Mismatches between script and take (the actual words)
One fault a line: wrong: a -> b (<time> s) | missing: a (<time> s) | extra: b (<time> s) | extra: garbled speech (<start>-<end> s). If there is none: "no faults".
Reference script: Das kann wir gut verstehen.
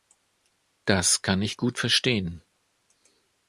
wrong: wir -> ich (1.4 s)